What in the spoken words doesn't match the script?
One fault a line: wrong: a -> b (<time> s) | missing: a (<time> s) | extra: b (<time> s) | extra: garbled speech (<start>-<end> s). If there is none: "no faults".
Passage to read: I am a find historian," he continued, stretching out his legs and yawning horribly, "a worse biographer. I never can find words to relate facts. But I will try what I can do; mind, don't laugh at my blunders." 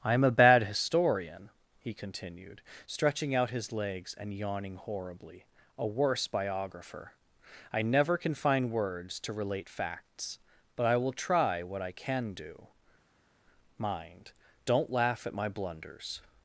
wrong: find -> bad (0.3 s)